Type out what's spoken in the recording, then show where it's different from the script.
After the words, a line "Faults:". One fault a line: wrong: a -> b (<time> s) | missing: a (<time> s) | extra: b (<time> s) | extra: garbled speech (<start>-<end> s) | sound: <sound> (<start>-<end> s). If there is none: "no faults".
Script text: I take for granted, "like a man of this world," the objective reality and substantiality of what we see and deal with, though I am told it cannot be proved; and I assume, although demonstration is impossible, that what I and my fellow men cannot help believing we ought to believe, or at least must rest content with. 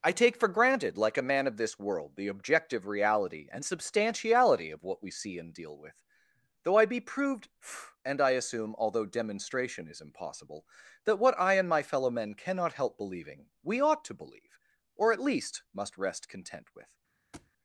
I take for granted, "like a man of this world," the objective reality and substantiality of what we see and deal with, though I be proved; and I assume, although demonstration is impossible, that what I and my fellow men cannot help believing we ought to believe, or at least must rest content with.
Faults:
missing: am told it cannot (6.8 s)
sound: thud (17.3-17.5 s)